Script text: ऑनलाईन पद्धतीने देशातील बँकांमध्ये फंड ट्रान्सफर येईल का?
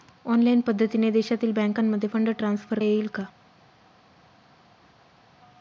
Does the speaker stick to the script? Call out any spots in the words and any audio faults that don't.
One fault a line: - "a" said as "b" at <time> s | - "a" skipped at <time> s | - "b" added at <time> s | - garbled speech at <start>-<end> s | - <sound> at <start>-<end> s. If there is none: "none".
none